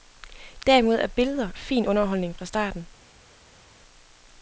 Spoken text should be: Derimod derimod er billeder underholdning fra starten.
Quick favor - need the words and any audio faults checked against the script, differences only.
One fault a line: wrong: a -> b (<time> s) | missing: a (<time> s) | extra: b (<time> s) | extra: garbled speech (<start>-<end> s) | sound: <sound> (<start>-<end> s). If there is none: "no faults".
missing: derimod (0.9 s)
extra: fin (1.5 s)